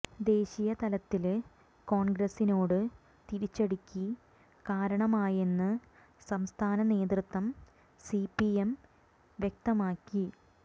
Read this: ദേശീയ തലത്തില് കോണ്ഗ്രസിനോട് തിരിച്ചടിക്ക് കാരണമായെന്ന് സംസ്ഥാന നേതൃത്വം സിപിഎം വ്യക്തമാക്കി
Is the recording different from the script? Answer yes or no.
no